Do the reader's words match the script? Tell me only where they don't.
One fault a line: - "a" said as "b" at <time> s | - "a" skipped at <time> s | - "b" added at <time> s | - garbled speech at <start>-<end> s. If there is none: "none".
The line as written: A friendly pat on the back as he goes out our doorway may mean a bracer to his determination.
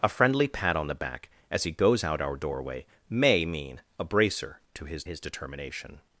- "his" added at 5.0 s